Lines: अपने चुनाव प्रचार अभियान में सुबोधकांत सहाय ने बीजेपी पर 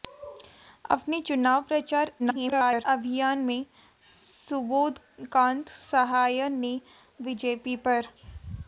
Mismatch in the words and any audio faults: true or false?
true